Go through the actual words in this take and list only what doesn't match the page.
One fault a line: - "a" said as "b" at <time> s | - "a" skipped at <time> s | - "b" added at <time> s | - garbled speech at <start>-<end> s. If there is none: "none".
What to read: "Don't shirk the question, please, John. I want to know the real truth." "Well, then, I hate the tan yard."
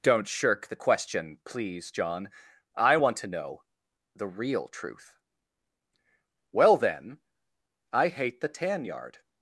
none